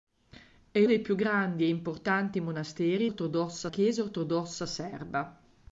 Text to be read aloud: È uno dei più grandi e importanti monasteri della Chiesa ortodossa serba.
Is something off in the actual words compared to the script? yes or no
yes